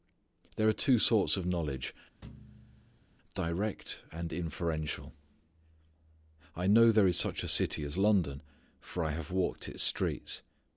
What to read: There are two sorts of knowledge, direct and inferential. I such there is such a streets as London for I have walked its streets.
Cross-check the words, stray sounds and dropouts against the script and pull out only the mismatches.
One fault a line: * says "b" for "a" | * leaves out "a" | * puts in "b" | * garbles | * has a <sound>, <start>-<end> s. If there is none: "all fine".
* has a thud, 2.2-3.1 s
* says "know" for "such"
* says "city" for "streets"